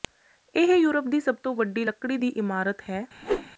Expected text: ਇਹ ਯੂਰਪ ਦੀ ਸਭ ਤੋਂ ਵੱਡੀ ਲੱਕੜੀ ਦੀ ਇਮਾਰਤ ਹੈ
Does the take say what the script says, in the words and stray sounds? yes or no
no